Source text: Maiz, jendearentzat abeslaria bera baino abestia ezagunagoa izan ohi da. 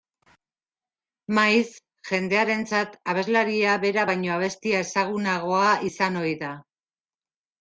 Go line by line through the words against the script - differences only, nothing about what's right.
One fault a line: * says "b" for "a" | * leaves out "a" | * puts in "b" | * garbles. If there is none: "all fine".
all fine